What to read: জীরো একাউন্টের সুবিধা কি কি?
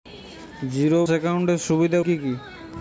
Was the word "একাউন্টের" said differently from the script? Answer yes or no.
no